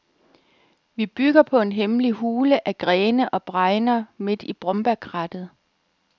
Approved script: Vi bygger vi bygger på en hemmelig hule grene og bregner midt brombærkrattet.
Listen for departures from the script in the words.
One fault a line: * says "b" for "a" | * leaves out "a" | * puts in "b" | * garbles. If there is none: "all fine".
* leaves out "vi bygger"
* puts in "af"
* puts in "i"